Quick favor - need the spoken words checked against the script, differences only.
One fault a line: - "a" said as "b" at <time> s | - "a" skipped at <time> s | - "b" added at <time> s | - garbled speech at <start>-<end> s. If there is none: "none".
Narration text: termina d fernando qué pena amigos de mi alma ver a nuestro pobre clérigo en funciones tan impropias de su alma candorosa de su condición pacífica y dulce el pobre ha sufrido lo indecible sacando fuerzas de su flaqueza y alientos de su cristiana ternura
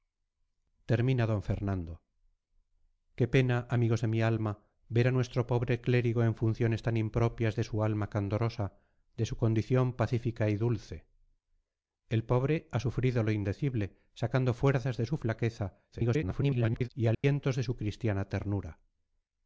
- garbled speech at 15.9-16.9 s